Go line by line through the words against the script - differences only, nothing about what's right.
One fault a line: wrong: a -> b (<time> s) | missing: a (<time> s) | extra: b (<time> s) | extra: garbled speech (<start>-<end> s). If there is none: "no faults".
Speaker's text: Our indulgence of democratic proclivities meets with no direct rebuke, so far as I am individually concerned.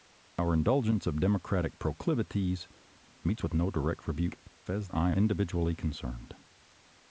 missing: so far (4.4 s)
missing: am (5.1 s)